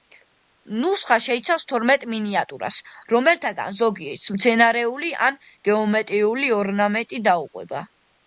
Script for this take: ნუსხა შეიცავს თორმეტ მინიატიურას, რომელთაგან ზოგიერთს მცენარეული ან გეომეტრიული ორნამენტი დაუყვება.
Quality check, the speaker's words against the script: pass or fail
pass